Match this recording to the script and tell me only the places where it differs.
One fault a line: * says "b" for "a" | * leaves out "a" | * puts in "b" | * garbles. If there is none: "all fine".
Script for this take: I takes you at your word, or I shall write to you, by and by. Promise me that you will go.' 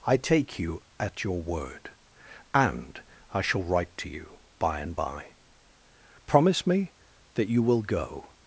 * says "take" for "takes"
* says "and" for "or"